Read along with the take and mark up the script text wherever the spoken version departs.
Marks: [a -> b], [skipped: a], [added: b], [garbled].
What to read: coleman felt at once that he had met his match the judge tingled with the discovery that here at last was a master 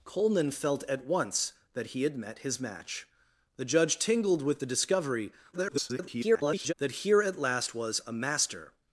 coleman felt at once that he had met his match the judge tingled with the discovery [garbled] that here at last was a master